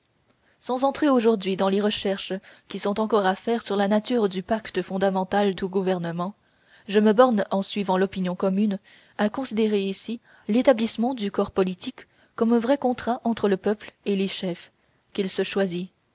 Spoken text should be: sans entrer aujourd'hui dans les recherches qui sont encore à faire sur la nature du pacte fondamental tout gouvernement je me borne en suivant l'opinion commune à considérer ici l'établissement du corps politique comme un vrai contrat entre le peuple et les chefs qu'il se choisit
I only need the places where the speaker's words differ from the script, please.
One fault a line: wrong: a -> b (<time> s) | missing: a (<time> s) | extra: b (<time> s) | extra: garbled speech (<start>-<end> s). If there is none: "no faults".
no faults